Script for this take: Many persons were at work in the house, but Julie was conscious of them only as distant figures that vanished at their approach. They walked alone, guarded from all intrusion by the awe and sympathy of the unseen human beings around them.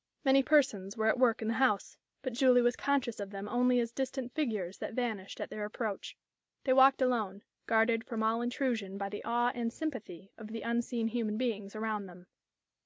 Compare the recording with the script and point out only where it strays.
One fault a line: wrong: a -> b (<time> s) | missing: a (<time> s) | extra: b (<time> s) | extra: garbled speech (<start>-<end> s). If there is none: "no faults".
no faults